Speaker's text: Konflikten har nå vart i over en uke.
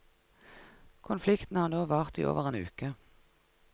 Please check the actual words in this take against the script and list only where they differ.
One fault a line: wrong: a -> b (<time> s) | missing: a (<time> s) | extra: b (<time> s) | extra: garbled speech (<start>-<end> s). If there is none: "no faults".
no faults